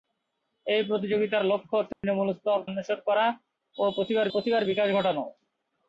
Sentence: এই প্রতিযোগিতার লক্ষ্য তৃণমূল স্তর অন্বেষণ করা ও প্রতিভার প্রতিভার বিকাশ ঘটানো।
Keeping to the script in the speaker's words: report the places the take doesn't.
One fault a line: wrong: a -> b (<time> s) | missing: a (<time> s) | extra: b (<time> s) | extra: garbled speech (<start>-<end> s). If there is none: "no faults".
no faults